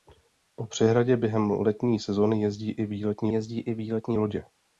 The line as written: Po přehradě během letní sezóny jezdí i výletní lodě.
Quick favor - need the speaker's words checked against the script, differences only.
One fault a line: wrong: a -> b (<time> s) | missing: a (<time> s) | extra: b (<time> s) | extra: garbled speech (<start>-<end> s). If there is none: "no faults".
extra: jezdí i výletní (3.3 s)